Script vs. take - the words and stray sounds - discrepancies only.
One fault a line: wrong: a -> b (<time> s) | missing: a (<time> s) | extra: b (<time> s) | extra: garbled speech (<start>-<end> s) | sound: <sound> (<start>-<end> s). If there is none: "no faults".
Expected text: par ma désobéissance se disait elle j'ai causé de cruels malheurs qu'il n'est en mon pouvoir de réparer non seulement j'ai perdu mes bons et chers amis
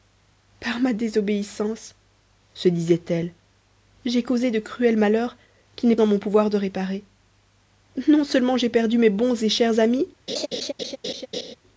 sound: laugh (10.3-11.6 s)